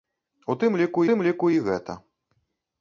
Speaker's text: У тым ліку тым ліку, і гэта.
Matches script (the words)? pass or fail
pass